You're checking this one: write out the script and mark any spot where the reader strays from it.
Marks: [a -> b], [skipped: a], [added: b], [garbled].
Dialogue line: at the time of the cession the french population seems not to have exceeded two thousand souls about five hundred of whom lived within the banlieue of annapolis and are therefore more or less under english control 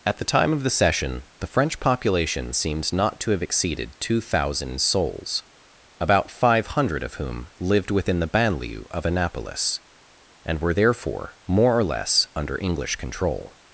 at the time of the cession the french population seems not to have exceeded two thousand souls about five hundred of whom lived within the banlieue of annapolis and [are -> were] therefore more or less under english control